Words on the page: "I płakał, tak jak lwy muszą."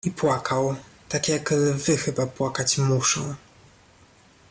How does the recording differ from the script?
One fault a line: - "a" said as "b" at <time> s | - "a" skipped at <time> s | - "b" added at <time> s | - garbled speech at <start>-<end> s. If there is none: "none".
- "chyba płakać" added at 2.0 s